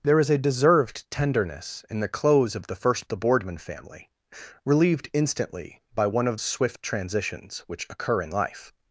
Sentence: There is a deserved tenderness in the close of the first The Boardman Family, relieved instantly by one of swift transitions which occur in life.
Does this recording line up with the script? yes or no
yes